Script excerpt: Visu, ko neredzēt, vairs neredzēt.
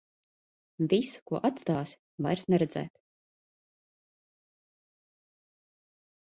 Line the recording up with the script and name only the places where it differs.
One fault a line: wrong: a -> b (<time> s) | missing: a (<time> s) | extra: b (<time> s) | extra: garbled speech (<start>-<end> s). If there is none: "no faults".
wrong: neredzēt -> atstāsi (1.5 s)